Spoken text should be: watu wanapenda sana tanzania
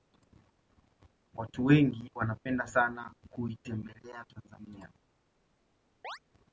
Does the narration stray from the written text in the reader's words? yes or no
yes